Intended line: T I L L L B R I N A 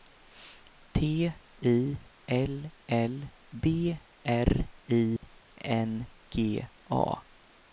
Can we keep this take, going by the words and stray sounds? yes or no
no